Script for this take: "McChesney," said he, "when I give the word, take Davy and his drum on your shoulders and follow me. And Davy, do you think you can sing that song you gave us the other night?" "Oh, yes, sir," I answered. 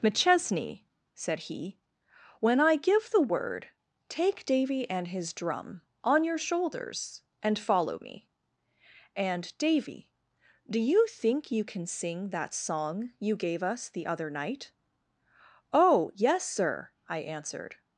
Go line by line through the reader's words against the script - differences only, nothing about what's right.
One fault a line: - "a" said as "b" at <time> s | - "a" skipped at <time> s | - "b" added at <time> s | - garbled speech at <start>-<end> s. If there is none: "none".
none